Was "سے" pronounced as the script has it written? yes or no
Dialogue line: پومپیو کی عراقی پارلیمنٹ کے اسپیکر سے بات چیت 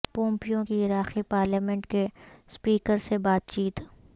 yes